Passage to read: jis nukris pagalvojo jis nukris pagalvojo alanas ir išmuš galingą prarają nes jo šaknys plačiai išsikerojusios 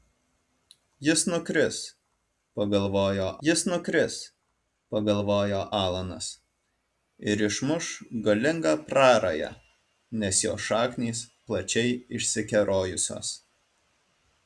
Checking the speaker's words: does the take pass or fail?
pass